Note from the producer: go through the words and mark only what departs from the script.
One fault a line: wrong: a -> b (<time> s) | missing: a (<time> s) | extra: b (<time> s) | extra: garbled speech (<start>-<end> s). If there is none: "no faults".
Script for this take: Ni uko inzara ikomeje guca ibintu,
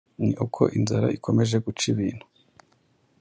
no faults